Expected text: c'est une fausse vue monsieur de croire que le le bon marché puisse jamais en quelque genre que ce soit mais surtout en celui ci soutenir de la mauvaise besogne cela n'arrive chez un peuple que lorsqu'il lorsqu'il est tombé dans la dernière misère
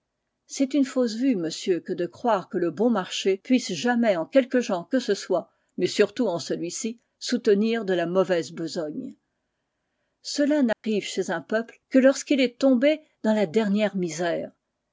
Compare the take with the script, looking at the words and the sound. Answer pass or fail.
fail